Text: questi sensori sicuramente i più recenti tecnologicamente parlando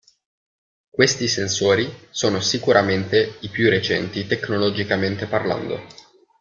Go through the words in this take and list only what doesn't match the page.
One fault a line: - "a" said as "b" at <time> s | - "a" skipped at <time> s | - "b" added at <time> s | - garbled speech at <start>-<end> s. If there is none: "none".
- "sono" added at 2.1 s